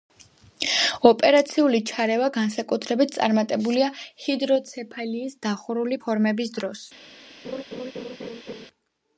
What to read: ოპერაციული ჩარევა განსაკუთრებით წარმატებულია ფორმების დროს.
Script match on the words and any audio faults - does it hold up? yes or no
no